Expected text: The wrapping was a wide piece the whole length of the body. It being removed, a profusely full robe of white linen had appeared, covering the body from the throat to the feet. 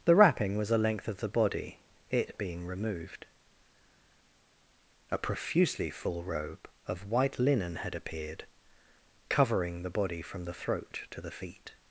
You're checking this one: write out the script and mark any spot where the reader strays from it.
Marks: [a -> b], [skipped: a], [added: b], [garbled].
The wrapping was a [skipped: wide piece the whole] length of the body. It being removed, a profusely full robe of white linen had appeared, covering the body from the throat to the feet.